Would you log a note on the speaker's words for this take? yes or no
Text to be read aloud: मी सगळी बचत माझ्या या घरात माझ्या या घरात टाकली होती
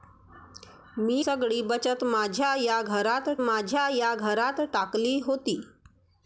no